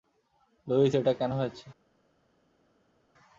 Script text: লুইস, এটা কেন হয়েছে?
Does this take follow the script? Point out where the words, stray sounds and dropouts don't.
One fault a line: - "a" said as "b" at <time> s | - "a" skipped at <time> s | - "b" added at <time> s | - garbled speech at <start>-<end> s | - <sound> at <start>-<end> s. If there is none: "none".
none